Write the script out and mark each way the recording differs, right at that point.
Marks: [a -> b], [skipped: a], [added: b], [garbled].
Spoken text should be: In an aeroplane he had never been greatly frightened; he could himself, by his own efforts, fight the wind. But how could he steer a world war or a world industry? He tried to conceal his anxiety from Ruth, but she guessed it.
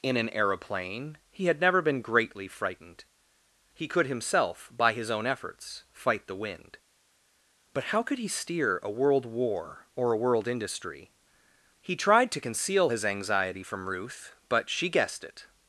In an aeroplane he had never been greatly frightened; he could himself, by his own efforts, fight the wind. But how could he steer a world war or a world industry? He tried to conceal his anxiety from Ruth, but she guessed it.